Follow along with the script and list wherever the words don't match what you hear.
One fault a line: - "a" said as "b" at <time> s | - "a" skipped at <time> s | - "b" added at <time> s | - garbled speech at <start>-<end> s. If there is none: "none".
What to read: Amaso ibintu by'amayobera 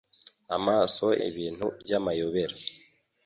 none